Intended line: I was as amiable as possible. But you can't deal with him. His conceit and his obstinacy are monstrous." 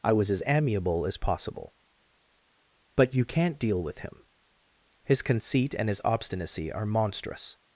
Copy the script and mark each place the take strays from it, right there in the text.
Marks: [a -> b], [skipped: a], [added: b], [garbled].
I was as amiable as possible. But you can't deal with him. His conceit and his obstinacy are monstrous."